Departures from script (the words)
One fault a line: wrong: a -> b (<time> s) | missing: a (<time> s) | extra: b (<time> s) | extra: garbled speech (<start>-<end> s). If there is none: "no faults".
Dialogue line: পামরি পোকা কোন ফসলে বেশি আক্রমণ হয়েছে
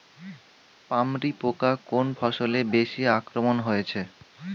no faults